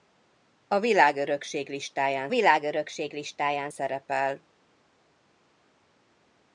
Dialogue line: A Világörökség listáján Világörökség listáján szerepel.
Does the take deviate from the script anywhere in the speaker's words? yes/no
no